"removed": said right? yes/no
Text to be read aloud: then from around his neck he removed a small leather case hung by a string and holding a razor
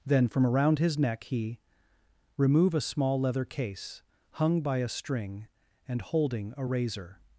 no